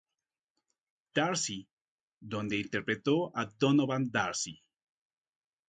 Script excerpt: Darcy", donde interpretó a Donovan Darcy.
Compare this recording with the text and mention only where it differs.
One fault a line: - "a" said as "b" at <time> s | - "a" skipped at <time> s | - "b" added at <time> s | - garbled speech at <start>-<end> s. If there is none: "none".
none